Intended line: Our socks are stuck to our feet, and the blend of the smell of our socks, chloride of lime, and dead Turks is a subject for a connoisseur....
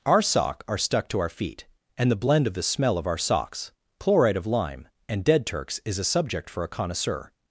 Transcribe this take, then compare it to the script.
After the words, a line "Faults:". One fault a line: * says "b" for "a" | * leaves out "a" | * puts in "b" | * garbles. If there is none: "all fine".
Our sock are stuck to our feet, and the blend of the smell of our socks, chloride of lime, and dead Turks is a subject for a connoisseur....
Faults:
* says "sock" for "socks"